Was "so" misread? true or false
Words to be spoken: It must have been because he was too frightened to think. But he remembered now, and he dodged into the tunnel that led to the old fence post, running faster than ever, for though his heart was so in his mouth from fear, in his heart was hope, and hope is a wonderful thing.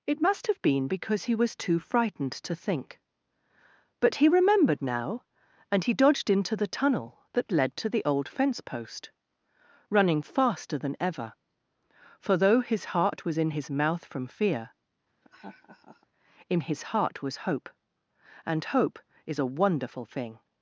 true